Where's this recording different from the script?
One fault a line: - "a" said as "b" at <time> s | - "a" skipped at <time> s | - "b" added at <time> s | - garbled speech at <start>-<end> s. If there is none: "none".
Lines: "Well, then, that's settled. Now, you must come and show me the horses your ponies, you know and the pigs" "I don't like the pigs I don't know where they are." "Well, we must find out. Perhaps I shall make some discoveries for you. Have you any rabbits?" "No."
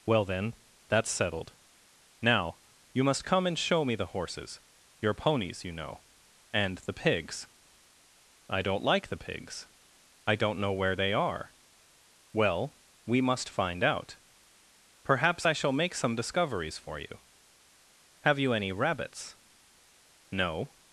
none